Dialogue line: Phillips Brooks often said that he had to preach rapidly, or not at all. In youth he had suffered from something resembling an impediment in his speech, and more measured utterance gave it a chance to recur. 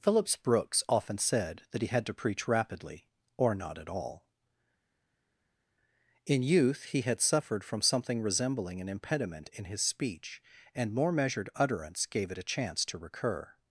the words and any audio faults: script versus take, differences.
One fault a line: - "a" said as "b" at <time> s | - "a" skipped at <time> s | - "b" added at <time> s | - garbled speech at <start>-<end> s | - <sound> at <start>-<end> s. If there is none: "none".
none